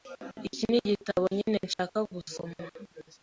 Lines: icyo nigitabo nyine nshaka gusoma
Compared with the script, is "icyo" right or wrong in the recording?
wrong